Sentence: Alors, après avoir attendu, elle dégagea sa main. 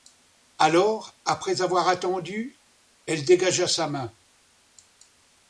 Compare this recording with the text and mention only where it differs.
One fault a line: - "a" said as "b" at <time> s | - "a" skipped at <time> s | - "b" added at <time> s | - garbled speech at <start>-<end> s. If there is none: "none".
none